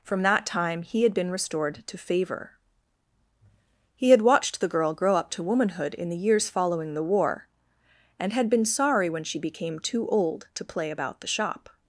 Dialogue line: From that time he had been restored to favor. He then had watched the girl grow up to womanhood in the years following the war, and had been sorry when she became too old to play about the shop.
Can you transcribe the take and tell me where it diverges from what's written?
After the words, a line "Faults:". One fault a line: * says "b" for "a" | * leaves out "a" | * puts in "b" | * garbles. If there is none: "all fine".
From that time he had been restored to favor. He had watched the girl grow up to womanhood in the years following the war, and had been sorry when she became too old to play about the shop.
Faults:
* leaves out "then"